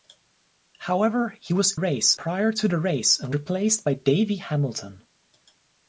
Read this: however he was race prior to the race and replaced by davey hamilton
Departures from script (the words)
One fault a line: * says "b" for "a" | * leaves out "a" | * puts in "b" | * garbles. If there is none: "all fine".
all fine